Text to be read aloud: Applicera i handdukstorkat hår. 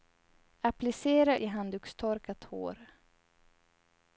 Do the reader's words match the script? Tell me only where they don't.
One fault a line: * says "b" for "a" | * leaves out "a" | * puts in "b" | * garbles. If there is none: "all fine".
all fine